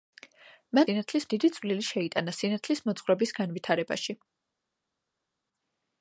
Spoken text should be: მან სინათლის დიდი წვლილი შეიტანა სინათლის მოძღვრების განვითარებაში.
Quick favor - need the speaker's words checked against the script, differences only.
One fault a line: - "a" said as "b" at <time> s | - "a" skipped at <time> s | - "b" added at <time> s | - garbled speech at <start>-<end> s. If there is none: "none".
none